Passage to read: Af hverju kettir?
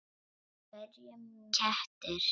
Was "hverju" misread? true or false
false